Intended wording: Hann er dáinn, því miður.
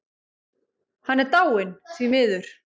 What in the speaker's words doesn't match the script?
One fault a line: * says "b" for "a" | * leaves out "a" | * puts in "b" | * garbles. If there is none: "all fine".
all fine